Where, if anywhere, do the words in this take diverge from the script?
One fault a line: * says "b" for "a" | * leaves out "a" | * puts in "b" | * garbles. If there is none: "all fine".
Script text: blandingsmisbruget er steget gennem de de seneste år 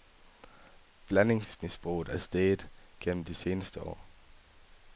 * leaves out "de"